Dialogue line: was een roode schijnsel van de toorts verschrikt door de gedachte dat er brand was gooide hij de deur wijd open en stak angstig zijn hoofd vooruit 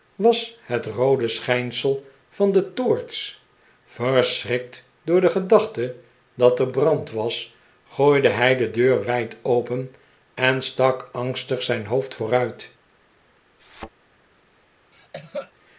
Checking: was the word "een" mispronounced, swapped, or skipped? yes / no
yes